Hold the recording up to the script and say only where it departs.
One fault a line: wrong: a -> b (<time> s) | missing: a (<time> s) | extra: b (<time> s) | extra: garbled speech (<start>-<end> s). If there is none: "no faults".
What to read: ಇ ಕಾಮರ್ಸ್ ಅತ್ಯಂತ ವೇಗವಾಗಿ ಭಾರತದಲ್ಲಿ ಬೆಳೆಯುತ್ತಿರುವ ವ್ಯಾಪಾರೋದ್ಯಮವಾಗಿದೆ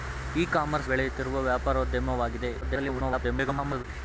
missing: ಅತ್ಯಂತ ವೇಗವಾಗಿ ಭಾರತದಲ್ಲಿ (0.9 s)
extra: garbled speech (2.6-3.8 s)